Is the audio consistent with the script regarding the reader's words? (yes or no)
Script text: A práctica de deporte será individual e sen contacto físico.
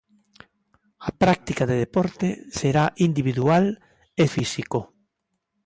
no